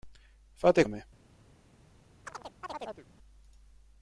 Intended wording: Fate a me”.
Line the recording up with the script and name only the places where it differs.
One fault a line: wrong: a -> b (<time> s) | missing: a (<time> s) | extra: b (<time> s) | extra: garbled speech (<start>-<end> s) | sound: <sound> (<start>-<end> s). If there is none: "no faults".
sound: chirp (2.3-3.1 s)